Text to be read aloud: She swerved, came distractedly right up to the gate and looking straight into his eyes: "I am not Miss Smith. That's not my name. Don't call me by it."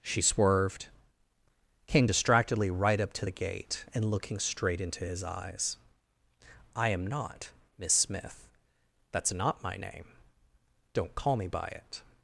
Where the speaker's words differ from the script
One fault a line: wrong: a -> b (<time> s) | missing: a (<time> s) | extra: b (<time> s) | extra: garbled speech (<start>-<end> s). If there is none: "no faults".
no faults